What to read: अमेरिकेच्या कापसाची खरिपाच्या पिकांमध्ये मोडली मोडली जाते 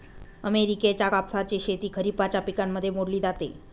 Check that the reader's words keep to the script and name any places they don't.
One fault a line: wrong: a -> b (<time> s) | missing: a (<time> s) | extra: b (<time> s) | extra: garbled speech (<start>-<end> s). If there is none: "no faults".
extra: शेती (1.6 s)
missing: मोडली (3.2 s)